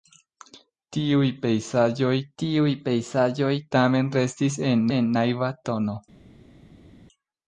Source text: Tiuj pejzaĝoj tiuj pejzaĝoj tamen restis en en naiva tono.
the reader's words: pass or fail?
pass